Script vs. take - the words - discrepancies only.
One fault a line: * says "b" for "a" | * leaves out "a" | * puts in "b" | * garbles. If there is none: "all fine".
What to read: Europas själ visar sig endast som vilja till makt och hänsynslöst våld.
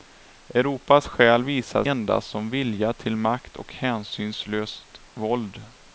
* leaves out "sig"